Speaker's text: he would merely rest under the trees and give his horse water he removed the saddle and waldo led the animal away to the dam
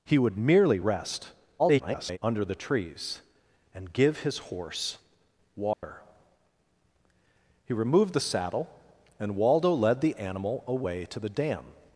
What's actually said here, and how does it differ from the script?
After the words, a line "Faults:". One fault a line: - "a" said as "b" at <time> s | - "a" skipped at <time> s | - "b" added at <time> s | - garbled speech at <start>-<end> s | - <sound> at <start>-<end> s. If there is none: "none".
he would merely rest [garbled] under the trees and give his horse water he removed the saddle and waldo led the animal away to the dam
Faults:
- garbled speech at 1.6-2.2 s
- dropout at 5.7-5.8 s